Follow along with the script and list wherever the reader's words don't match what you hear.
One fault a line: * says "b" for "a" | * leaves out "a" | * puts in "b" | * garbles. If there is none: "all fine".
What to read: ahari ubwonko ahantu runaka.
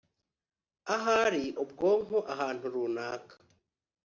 all fine